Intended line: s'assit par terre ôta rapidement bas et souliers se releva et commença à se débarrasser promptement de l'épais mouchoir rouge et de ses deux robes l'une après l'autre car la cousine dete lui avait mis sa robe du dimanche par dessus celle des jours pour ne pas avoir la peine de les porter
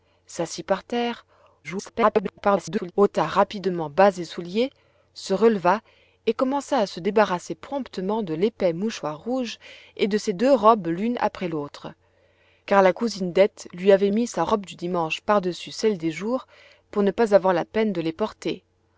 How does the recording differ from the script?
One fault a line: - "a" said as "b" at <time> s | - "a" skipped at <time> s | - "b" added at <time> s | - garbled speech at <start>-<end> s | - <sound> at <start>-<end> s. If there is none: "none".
- garbled speech at 1.6-2.9 s